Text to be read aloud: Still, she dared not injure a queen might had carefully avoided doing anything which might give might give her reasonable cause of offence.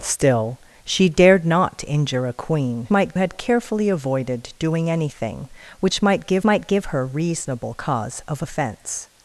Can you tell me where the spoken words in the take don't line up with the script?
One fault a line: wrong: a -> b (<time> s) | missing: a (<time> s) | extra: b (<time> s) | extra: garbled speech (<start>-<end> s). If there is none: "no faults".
no faults